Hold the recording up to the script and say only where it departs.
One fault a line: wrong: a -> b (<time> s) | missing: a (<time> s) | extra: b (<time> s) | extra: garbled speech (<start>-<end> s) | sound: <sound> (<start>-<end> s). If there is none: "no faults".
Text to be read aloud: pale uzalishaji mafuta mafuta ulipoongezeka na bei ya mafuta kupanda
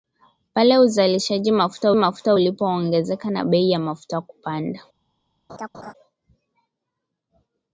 sound: laugh (5.5-5.9 s)